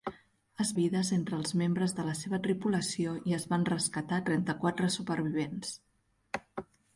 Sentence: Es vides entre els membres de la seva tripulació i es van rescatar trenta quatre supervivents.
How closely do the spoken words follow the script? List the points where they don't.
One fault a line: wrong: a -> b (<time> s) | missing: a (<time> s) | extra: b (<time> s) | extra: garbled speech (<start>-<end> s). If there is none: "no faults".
no faults